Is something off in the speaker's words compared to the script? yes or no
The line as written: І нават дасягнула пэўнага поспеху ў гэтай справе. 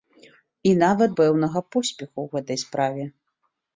yes